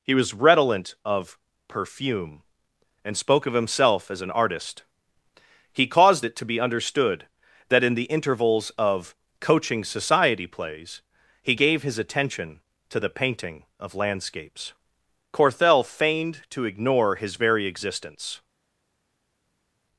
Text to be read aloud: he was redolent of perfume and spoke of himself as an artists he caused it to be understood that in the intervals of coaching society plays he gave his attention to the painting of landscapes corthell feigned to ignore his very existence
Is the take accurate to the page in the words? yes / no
no